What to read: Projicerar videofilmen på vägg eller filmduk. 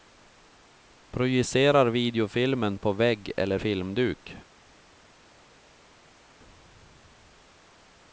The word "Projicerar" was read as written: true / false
true